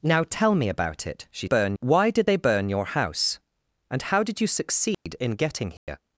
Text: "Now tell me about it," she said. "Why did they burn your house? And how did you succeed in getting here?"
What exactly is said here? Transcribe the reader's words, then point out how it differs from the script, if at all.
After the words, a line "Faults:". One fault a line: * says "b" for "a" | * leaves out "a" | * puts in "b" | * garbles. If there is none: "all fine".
"Now tell me about it," she burn. "Why did they burn your house? And how did you succeed in getting here?"
Faults:
* says "burn" for "said"